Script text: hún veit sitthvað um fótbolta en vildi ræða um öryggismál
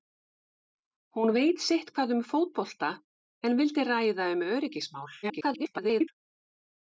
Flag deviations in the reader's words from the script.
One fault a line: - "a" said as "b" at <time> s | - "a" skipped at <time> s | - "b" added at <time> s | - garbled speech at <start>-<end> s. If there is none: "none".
- garbled speech at 5.2-6.1 s